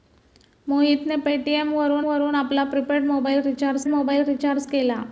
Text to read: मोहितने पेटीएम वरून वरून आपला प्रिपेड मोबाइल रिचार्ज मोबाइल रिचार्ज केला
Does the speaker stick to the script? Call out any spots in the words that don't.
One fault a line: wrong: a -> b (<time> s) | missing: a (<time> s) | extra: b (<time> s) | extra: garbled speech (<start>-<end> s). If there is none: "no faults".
no faults